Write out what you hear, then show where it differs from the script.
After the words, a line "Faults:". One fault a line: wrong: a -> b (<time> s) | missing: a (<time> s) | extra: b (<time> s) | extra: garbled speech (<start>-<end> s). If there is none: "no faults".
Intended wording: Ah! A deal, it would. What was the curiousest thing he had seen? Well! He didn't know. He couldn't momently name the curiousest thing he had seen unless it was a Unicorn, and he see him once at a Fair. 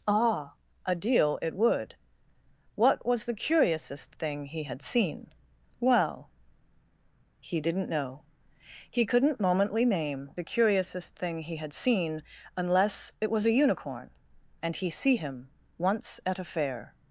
Ah! A deal, it would. What was the curiousest thing he had seen? Well! He didn't know. He couldn't momently name the curiousest thing he had seen unless it was a Unicorn, and he see him once at a Fair.
Faults:
no faults